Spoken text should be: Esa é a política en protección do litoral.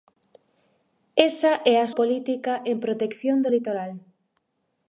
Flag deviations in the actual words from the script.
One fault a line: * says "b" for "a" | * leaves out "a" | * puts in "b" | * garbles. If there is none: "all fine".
all fine